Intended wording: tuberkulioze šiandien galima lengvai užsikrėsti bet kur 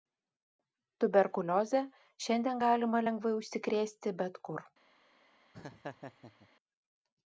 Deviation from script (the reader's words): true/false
false